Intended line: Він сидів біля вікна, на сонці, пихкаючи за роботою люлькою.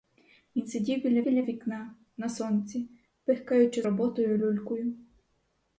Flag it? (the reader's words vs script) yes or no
yes